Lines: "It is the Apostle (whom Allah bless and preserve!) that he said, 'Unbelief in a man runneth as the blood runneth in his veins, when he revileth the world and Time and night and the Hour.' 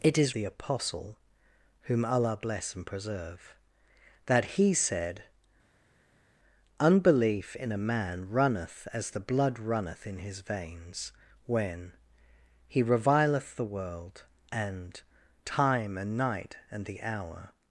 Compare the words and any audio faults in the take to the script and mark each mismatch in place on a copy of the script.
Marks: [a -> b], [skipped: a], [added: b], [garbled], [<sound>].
"It is the Apostle (whom Allah bless and preserve!) that he said, 'Unbelief in a man runneth as the blood runneth in his veins, when he revileth the world and Time and night and the Hour.'